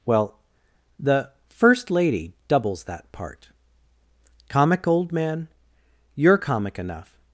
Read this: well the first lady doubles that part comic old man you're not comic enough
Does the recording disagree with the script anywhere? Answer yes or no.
yes